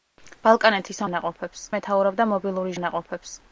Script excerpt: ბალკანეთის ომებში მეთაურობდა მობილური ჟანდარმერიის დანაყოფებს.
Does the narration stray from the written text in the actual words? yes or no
yes